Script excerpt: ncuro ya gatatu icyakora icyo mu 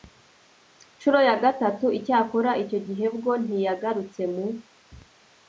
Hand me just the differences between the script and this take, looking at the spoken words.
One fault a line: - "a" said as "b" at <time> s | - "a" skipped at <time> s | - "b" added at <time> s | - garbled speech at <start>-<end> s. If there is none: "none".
- "gihe bwo ntiyagarutse" added at 2.9 s